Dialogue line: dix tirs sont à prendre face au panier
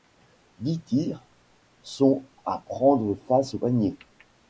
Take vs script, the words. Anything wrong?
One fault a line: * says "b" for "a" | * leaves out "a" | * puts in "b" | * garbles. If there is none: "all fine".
all fine